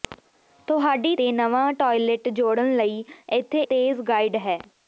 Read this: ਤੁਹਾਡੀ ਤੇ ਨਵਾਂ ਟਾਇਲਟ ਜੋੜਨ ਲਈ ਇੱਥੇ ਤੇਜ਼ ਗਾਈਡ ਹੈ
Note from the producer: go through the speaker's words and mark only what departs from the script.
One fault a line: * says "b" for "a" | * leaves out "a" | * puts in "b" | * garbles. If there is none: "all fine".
all fine